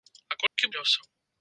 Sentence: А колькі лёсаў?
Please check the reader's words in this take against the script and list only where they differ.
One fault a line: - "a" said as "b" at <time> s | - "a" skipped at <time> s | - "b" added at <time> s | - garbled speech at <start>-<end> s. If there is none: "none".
none